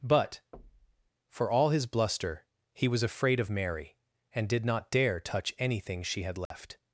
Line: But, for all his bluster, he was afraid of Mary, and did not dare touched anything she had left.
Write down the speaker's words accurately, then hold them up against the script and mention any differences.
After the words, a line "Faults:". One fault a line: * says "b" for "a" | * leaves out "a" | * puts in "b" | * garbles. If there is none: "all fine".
But, for all his bluster, he was afraid of Mary, and did not dare touch anything she had left.
Faults:
* says "touch" for "touched"